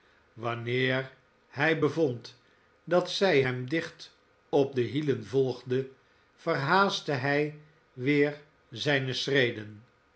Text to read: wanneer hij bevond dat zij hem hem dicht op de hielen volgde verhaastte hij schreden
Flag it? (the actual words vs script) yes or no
yes